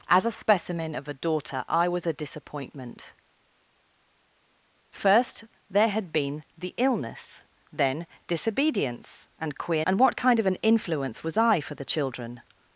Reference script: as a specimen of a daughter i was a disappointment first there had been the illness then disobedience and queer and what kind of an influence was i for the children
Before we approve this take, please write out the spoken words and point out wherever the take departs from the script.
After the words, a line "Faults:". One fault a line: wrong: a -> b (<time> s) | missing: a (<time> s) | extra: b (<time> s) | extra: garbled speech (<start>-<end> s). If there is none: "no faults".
as a specimen of a daughter i was a disappointment first there had been the illness then disobedience and queer and what kind of an influence was i for the children
Faults:
no faults